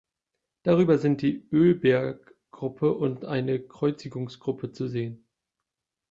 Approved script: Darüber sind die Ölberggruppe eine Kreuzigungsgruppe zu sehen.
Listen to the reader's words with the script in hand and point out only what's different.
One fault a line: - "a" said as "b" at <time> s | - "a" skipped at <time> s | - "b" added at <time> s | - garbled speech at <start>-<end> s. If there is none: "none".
- "und" added at 2.9 s